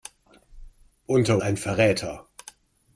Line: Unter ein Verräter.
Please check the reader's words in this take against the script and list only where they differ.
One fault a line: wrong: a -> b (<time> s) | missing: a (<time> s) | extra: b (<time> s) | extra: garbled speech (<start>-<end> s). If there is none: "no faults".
no faults